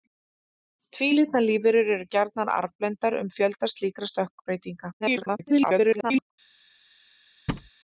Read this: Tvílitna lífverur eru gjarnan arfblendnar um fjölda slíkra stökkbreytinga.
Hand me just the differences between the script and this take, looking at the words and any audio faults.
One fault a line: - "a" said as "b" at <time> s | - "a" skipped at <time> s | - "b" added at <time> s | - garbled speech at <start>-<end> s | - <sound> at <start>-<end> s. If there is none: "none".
- garbled speech at 5.0-6.3 s
- thud at 7.5-7.7 s